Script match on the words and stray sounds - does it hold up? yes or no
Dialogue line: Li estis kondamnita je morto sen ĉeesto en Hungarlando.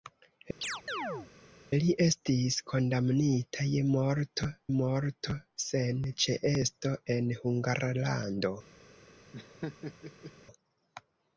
no